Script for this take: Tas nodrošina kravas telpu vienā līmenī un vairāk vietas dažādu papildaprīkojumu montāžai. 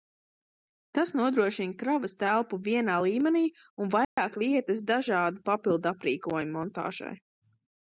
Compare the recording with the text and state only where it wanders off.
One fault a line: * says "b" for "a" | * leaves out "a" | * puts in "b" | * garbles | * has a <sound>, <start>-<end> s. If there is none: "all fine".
* has a dropout, 4.0-4.2 s